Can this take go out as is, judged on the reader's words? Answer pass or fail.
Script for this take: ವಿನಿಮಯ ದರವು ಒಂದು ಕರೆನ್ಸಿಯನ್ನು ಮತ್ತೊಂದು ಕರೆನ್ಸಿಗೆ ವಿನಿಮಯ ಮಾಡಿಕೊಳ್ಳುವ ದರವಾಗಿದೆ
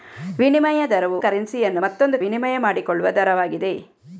fail